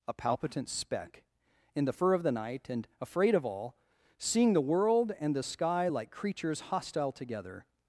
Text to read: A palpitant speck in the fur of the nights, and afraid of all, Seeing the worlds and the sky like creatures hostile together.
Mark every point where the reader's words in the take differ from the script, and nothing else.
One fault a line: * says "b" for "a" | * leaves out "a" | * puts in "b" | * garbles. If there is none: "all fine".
* says "night" for "nights"
* says "world" for "worlds"